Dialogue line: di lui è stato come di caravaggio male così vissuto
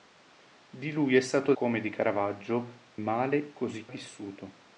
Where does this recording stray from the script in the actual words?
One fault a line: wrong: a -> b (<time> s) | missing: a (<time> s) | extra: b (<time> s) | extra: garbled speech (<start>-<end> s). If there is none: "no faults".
no faults